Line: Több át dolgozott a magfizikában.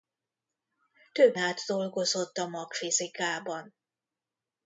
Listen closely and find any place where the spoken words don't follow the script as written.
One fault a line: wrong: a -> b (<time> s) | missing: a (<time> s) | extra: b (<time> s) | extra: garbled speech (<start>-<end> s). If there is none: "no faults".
no faults